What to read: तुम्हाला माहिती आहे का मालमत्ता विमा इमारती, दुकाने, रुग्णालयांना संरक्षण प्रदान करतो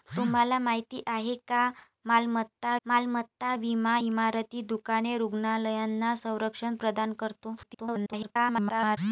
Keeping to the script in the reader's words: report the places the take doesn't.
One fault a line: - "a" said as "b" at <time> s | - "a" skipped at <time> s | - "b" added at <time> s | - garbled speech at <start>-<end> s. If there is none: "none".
- "मालमत्ता" added at 2.9 s
- garbled speech at 7.6-9.0 s